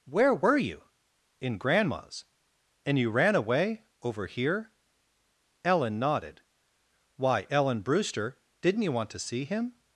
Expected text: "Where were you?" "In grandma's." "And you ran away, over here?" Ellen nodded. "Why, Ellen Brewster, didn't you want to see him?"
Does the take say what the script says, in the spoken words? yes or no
yes